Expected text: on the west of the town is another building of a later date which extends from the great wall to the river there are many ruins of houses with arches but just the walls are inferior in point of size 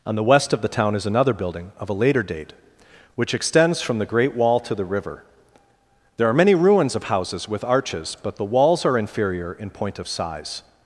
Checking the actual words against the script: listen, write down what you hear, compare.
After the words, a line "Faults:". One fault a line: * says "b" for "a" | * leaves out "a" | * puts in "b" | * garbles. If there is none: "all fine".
on the west of the town is another building of a later date which extends from the great wall to the river there are many ruins of houses with arches but the walls are inferior in point of size
Faults:
* leaves out "just"